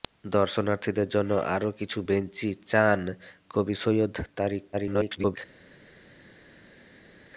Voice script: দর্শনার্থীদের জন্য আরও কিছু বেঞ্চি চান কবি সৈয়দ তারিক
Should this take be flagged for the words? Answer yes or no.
yes